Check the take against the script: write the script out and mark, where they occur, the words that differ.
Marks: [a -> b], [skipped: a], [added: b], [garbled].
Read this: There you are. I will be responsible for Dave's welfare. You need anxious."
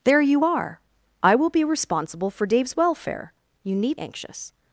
There you are. I will be responsible for Dave's welfare. You need anxious."